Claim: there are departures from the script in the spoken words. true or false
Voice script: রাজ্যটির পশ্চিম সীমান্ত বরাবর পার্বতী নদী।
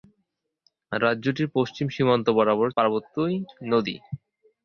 false